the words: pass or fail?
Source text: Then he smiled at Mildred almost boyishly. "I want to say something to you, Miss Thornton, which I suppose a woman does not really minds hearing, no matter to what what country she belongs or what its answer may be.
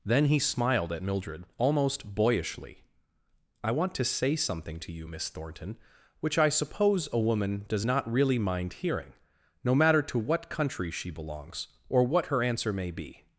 fail